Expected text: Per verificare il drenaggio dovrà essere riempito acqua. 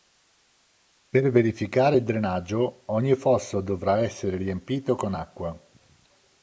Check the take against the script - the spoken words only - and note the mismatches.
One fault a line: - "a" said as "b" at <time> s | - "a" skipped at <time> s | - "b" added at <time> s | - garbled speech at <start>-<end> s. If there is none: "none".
- "ogni fosso" added at 2.9 s
- "con" added at 5.0 s